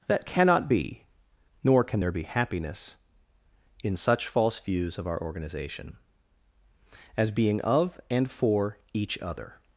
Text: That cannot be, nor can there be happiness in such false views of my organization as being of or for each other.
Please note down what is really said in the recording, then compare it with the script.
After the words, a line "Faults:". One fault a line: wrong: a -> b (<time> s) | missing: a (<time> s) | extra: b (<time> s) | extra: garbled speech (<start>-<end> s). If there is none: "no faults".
That cannot be, nor can there be happiness in such false views of our organization as being of and for each other.
Faults:
wrong: my -> our (5.1 s)
wrong: or -> and (8.1 s)